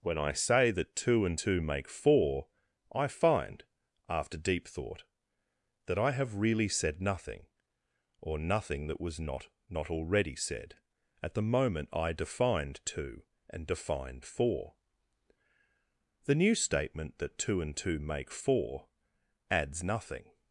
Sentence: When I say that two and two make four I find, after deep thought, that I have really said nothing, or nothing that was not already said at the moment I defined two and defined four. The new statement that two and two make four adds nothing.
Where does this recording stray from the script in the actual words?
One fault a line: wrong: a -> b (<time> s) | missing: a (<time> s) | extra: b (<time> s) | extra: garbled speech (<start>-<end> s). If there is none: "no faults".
extra: not (9.7 s)